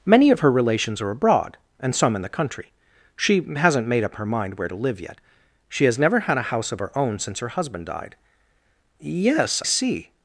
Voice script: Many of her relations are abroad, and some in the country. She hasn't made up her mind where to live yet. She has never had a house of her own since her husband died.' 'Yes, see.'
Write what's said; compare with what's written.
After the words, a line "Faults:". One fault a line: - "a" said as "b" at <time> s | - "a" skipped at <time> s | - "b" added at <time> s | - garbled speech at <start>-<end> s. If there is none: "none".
Many of her relations are abroad, and some in the country. She hasn't made up her mind where to live yet. She has never had a house of her own since her husband died.' 'Yes, see.'
Faults:
none